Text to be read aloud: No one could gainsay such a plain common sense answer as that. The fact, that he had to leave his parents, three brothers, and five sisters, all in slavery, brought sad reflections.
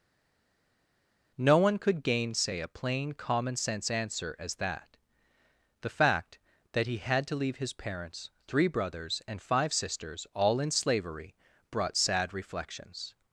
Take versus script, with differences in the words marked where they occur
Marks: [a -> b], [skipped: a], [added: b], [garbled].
No one could gainsay [skipped: such] a plain common sense answer as that. The fact, that he had to leave his parents, three brothers, and five sisters, all in slavery, brought sad reflections.